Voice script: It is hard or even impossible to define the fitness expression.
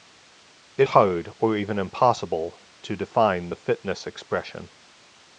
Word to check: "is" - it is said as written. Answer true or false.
false